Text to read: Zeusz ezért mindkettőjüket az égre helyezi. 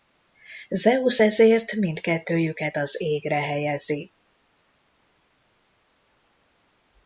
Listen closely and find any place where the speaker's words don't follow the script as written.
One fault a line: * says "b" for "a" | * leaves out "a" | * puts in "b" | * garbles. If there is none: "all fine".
all fine